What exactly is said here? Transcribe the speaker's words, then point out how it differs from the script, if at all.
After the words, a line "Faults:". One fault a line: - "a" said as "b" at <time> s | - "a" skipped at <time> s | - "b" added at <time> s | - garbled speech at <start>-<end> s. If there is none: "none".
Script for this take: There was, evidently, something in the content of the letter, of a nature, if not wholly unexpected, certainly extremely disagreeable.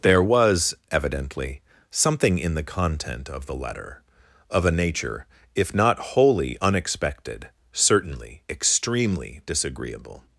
There was, evidently, something in the content of the letter, of a nature, if not wholly unexpected, certainly extremely disagreeable.
Faults:
none